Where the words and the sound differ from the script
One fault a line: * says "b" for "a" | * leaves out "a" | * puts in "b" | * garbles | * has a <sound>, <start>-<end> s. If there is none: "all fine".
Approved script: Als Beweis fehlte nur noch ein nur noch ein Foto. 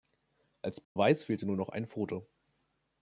* has a dropout, 0.8-1.0 s
* leaves out "nur noch ein"